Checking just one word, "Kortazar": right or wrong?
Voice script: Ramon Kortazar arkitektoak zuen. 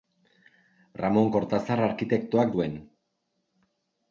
right